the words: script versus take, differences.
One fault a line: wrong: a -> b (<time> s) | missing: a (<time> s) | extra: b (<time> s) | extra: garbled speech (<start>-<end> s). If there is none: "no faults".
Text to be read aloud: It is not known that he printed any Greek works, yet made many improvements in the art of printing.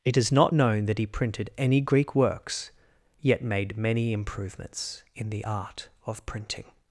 no faults